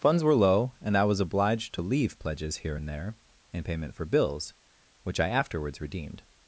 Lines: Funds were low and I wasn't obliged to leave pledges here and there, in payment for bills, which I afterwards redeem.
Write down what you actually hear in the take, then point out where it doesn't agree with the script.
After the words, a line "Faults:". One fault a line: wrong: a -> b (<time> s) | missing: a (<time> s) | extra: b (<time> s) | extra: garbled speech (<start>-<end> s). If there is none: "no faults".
Funds were low and I was obliged to leave pledges here and there, in payment for bills, which I afterwards redeemed.
Faults:
wrong: wasn't -> was (1.0 s)
wrong: redeem -> redeemed (5.8 s)